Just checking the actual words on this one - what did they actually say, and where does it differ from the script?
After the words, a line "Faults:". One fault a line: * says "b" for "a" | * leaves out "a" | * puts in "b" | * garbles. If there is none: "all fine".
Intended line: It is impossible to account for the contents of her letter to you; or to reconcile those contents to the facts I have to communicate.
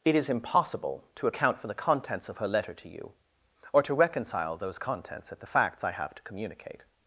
It is impossible to account for the contents of her letter to you; or to reconcile those contents at the facts I have to communicate.
Faults:
* says "at" for "to"